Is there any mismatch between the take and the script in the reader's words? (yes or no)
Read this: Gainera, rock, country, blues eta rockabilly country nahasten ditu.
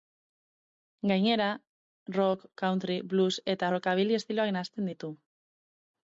yes